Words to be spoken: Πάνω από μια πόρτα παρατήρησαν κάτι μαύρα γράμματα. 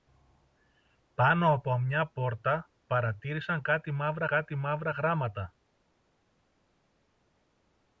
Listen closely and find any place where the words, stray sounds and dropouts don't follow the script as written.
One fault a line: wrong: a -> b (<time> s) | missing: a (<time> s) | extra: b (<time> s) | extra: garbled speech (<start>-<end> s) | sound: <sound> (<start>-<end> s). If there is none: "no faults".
extra: κάτι μαύρα (4.2 s)